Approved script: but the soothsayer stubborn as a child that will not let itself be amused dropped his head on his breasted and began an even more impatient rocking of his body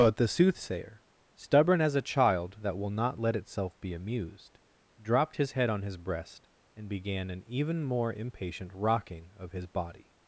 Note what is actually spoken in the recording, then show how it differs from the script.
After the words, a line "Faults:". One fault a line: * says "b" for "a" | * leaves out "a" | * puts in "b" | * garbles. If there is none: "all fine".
but the soothsayer stubborn as a child that will not let itself be amused dropped his head on his breast and began an even more impatient rocking of his body
Faults:
* says "breast" for "breasted"